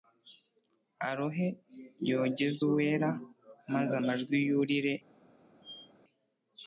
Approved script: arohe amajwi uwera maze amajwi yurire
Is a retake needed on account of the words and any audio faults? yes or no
yes